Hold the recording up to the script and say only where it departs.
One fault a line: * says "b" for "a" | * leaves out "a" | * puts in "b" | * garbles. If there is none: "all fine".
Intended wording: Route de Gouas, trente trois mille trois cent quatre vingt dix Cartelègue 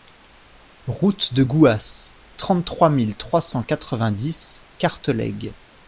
all fine